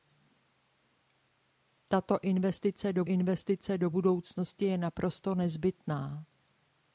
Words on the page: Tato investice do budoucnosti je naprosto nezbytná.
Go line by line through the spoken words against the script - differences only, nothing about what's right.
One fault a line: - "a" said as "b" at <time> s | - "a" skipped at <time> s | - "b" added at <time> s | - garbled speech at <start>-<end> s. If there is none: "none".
- "investice do" added at 3.0 s